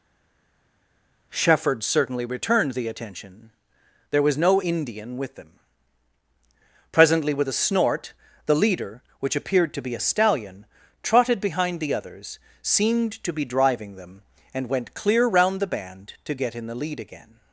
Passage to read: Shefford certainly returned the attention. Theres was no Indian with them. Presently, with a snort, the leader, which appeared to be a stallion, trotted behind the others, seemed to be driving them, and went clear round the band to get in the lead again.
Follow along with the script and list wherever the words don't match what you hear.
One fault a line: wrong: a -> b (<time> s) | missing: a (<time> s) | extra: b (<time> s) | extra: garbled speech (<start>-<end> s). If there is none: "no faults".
wrong: Theres -> There (4.1 s)